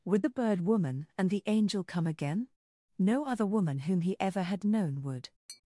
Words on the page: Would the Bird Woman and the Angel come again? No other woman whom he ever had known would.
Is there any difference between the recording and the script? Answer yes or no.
no